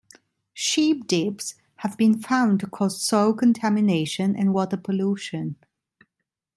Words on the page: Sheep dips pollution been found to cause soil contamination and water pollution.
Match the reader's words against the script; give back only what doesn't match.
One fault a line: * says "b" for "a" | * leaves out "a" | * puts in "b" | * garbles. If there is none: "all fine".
* says "have" for "pollution"